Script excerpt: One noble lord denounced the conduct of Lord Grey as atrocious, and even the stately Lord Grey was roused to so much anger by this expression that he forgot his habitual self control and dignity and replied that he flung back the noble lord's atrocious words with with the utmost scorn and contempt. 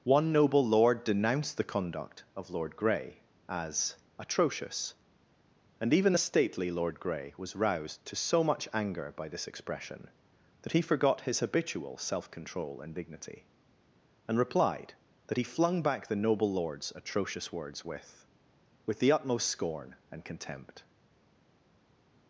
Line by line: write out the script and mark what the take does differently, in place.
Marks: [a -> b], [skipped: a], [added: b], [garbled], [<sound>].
One noble lord denounced the conduct of Lord Grey as atrocious, and even the stately Lord Grey was roused to so much anger by this expression that he forgot his habitual self control and dignity and replied that he flung back the noble lord's atrocious words with with the utmost scorn and contempt.